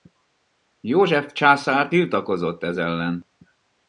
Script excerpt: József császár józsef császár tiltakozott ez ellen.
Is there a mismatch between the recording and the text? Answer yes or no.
yes